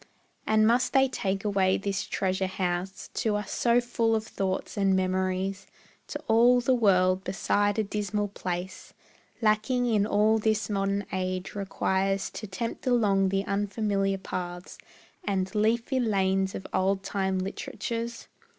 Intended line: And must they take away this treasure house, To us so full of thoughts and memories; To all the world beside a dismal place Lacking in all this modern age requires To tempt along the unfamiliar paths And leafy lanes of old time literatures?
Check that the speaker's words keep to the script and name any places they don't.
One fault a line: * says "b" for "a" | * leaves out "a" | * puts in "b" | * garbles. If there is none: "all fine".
all fine